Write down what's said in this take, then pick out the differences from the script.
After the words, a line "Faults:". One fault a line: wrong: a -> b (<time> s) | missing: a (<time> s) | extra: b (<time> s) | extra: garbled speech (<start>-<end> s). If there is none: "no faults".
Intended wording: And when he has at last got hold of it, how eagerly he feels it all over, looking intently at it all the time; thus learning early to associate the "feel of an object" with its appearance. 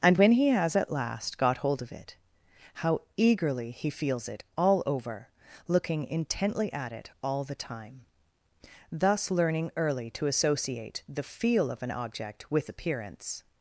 And when he has at last got hold of it, how eagerly he feels it all over, looking intently at it all the time; thus learning early to associate the "feel of an object" with appearance.
Faults:
missing: its (12.7 s)